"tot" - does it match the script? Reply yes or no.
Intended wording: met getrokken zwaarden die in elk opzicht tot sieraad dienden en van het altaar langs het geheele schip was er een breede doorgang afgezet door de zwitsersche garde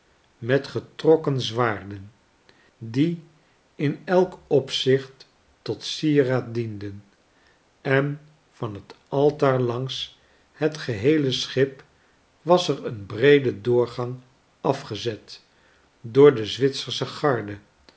yes